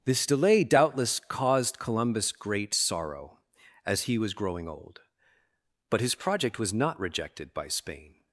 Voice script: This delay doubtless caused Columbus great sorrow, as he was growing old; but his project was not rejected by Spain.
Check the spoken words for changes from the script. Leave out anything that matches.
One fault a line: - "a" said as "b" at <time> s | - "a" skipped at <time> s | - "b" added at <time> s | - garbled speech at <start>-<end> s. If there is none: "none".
none